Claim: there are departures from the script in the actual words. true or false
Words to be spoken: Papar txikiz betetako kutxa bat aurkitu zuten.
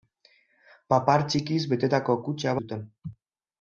true